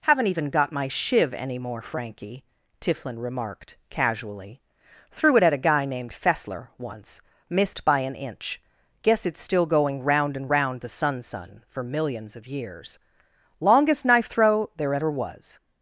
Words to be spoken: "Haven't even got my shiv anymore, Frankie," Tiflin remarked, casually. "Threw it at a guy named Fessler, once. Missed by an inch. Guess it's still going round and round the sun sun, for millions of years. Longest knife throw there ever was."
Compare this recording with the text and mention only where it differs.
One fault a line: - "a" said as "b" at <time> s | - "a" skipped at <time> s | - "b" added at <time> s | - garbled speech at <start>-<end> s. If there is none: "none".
none